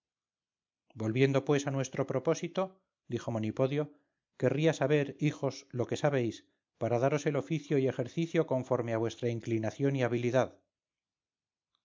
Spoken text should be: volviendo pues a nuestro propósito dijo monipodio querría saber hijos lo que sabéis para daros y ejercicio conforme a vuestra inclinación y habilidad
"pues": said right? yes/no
yes